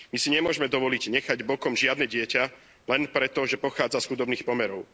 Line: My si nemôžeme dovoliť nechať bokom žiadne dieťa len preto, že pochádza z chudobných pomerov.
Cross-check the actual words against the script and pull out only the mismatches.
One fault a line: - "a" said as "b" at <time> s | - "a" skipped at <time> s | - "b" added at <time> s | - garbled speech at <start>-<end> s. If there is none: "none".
none